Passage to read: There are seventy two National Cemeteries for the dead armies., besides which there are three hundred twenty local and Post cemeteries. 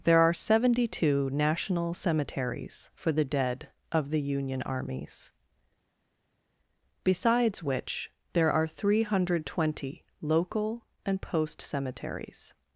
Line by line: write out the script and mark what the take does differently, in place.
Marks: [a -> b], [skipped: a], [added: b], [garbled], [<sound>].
There are seventy two National Cemeteries for the dead [added: of the Union] armies., besides which there are three hundred twenty local and Post cemeteries.